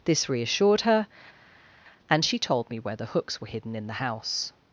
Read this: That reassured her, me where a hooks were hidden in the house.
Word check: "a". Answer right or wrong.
wrong